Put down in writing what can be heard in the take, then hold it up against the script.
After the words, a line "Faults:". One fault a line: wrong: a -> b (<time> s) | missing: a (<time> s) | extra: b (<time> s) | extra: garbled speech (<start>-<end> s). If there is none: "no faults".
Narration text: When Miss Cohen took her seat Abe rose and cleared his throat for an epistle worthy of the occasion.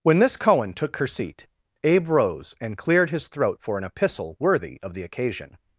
When Miss Cohen took her seat Abe rose and cleared his throat for an epistle worthy of the occasion.
Faults:
no faults